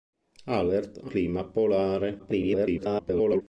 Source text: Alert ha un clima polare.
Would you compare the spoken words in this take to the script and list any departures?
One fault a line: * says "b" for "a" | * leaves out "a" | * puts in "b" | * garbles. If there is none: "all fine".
* leaves out "un"
* garbles